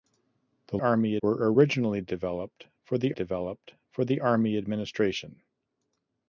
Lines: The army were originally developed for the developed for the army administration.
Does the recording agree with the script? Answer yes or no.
yes